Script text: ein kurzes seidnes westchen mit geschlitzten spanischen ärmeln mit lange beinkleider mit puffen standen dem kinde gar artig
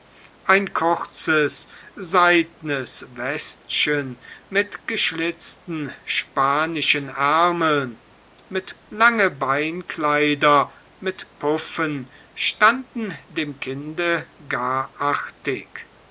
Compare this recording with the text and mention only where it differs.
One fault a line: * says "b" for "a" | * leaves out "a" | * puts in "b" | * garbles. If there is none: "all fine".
all fine